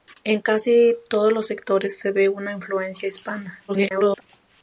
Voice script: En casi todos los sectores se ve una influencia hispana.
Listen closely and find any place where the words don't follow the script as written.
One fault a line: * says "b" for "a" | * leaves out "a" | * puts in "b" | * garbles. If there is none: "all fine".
* garbles